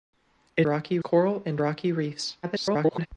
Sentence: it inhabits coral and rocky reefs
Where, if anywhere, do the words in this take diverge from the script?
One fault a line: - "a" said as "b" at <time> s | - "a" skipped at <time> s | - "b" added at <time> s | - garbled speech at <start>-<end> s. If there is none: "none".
- "inhabits" said as "rocky" at 0.6 s
- garbled speech at 2.4-3.1 s